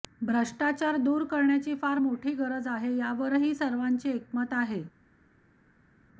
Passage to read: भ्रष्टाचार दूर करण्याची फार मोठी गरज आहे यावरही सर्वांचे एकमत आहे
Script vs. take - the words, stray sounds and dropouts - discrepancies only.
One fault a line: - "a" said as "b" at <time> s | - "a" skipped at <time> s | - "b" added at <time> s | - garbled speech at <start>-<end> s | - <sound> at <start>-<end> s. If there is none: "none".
none